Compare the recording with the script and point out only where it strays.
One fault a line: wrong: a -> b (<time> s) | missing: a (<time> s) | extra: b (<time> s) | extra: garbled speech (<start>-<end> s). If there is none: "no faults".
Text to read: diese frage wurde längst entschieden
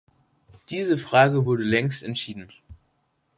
no faults